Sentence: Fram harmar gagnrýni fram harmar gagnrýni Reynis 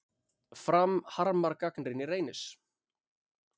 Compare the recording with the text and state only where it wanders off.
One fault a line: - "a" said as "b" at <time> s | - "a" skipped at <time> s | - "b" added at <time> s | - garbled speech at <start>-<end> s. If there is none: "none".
- "fram harmar gagnrýni" skipped at 2.1 s